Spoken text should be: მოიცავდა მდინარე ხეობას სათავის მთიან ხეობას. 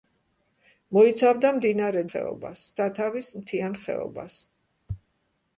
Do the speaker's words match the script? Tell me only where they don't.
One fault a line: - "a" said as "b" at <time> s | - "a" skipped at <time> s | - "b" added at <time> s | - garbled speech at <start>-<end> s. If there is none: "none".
none